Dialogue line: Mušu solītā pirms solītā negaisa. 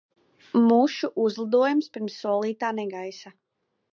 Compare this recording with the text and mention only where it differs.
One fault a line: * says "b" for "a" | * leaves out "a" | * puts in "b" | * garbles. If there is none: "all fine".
* says "uzlidojums" for "solītā"